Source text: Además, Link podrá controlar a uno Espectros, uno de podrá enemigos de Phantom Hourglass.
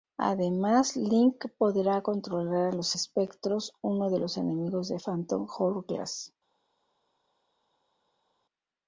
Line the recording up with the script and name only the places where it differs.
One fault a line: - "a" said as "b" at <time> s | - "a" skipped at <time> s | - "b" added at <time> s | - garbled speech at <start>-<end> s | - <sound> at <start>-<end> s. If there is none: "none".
- "uno" said as "los" at 2.8 s
- "podrá" said as "los" at 4.2 s